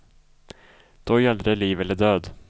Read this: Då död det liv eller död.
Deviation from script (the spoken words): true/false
true